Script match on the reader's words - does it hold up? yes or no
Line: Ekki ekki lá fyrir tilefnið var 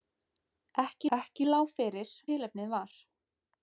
yes